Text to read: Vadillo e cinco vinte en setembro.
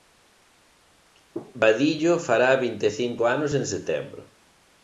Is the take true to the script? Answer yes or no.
no